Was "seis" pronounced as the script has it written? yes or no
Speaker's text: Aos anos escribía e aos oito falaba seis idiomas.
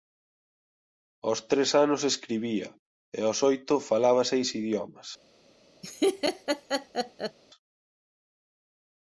yes